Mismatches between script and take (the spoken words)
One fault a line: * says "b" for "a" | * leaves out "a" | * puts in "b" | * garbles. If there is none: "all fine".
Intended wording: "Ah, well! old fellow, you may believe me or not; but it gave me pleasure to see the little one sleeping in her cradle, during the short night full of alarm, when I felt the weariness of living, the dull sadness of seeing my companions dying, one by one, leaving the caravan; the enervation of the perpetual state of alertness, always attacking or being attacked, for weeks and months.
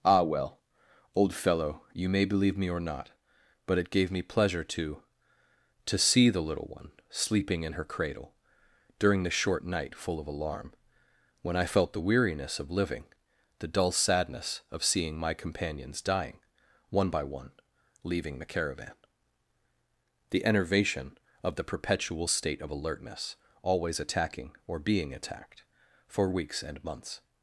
* puts in "to"